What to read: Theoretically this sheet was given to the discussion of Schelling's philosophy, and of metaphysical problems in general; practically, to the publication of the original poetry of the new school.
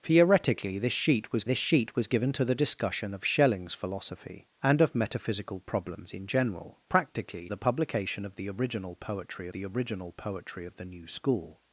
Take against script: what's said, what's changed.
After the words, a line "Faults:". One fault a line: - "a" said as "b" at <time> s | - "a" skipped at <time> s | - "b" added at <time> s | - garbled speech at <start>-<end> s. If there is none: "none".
Theoretically this sheet was this sheet was given to the discussion of Schelling's philosophy, and of metaphysical problems in general; practically, the publication of the original poetry the original poetry of the new school.
Faults:
- "this sheet was" added at 1.4 s
- "to" skipped at 7.5 s
- "the original poetry" added at 9.5 s